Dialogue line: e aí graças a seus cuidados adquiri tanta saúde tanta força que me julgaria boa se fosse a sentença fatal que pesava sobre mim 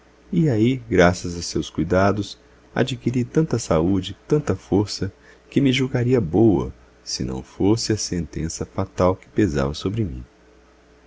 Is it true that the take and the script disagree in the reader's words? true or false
true